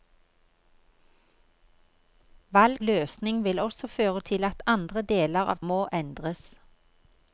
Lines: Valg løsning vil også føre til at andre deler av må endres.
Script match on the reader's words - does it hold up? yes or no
yes